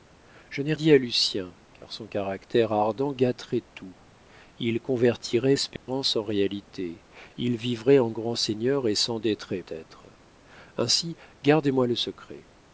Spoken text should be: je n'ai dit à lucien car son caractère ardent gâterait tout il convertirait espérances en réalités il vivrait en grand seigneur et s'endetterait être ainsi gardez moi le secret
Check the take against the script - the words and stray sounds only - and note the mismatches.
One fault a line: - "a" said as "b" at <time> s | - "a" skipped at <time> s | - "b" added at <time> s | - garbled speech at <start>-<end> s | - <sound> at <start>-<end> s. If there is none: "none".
- dropout at 5.8-5.9 s